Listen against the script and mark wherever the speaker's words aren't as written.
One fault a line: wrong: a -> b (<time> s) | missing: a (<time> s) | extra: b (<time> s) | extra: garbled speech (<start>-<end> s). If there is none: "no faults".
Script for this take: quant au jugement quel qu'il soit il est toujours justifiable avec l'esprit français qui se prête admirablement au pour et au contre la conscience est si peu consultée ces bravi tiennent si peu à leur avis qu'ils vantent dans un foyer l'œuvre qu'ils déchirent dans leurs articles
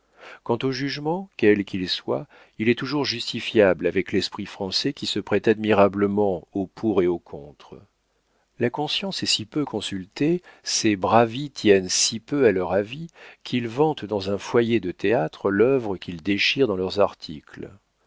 extra: de théâtre (14.8 s)